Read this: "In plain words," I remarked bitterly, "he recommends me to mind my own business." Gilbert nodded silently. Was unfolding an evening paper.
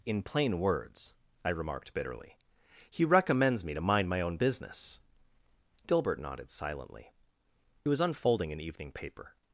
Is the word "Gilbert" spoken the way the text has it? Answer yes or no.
yes